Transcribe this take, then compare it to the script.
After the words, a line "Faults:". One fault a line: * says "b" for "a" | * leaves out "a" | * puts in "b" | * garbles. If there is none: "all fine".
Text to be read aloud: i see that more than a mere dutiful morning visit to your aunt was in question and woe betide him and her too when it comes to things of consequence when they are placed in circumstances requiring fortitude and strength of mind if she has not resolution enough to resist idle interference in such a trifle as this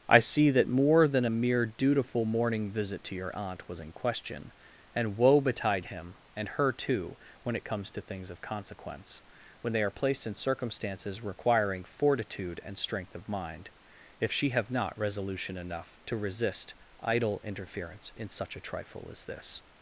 i see that more than a mere dutiful morning visit to your aunt was in question and woe betide him and her too when it comes to things of consequence when they are placed in circumstances requiring fortitude and strength of mind if she have not resolution enough to resist idle interference in such a trifle as this
Faults:
* says "have" for "has"